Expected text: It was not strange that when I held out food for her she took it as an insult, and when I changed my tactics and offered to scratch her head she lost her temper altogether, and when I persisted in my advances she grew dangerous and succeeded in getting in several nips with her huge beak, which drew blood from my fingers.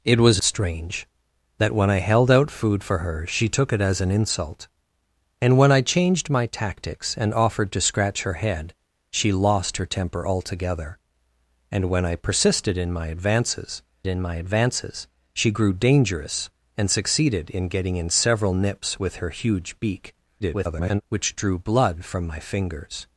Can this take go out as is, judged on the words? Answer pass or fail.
fail